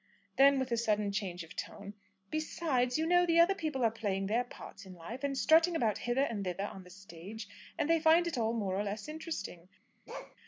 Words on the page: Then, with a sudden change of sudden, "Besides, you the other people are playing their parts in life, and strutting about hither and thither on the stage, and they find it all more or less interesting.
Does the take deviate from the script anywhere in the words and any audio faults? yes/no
yes